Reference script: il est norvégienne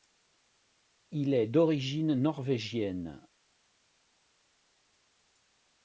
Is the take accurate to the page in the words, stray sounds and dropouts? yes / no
no